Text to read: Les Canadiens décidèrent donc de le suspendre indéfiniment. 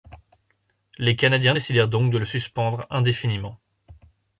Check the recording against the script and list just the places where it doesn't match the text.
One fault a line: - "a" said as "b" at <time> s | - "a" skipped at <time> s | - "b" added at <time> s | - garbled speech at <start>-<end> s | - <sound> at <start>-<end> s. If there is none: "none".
none